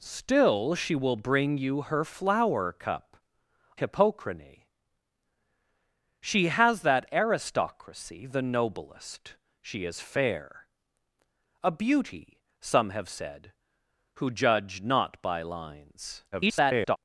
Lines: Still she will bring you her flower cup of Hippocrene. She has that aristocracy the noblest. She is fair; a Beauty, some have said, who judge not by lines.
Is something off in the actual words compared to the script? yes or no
yes